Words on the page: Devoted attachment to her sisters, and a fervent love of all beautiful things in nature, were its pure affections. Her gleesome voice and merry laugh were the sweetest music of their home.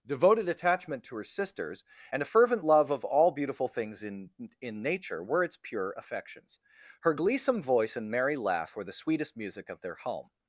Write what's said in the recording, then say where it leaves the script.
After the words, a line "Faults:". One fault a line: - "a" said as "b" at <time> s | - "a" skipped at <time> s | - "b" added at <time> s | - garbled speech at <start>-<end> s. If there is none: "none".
Devoted attachment to her sisters, and a fervent love of all beautiful things in in nature, were its pure affections. Her gleesome voice and merry laugh were the sweetest music of their home.
Faults:
- "in" added at 4.6 s